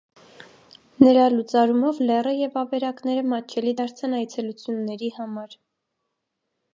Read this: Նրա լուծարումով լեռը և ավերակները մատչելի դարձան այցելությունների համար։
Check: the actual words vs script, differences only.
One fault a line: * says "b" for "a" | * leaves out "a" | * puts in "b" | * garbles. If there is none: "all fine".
all fine